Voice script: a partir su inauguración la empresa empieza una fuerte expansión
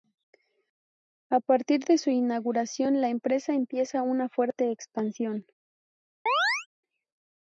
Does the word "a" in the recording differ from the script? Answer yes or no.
no